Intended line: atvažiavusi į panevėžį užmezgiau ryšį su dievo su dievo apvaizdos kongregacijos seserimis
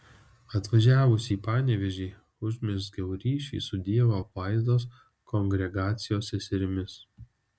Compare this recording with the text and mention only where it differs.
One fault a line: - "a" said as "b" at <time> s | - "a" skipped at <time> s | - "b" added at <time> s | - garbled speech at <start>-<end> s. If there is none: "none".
- "su dievo" skipped at 4.2 s